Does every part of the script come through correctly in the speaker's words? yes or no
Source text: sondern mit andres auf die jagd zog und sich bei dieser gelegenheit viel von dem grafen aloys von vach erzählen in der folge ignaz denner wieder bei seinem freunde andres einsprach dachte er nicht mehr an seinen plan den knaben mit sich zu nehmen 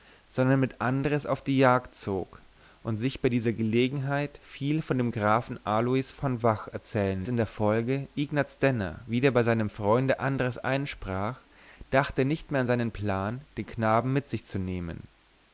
yes